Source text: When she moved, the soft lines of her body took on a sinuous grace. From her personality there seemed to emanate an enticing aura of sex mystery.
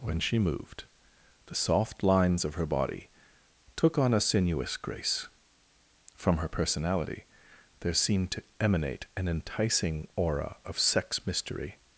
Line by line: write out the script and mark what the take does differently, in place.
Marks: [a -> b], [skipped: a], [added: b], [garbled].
When she moved, the soft lines of her body took on a sinuous grace. From her personality there seemed to emanate an enticing aura of sex mystery.